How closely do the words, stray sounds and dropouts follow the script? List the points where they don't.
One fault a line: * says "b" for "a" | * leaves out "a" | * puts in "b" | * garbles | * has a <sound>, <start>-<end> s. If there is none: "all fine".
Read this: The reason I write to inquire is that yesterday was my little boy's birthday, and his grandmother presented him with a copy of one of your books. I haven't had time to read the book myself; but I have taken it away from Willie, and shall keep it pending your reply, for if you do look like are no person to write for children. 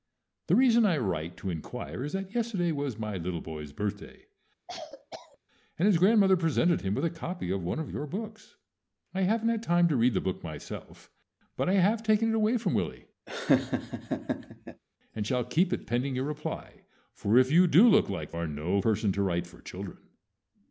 * has a cough, 4.7-5.4 s
* has a laugh, 13.3-14.8 s